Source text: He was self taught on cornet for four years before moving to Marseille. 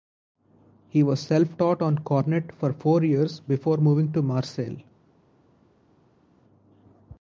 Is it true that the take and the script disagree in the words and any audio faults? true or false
false